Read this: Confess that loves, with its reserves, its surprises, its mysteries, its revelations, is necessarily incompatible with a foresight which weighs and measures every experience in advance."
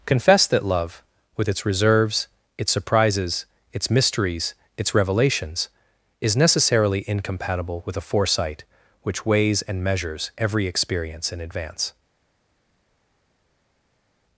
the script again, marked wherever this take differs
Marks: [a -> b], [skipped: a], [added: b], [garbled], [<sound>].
Confess that [loves, -> love] with its reserves, its surprises, its mysteries, its revelations, is necessarily incompatible with a foresight which weighs and measures every experience in advance."